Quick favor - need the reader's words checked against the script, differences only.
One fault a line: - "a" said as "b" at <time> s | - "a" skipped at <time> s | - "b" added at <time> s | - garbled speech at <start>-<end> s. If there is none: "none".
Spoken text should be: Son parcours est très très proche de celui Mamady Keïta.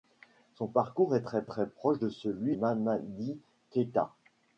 none